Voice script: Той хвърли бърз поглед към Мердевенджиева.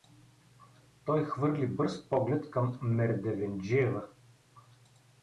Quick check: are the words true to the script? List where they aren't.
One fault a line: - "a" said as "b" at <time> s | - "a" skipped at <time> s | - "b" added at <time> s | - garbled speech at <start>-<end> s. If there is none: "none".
none